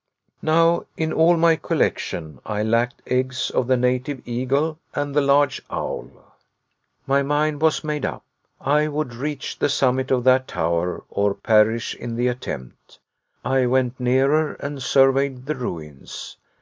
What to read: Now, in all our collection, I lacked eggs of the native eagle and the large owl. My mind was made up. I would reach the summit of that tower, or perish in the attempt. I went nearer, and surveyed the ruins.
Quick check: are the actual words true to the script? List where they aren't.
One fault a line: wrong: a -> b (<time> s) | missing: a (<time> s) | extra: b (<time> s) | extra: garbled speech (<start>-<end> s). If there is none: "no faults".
wrong: our -> my (1.4 s)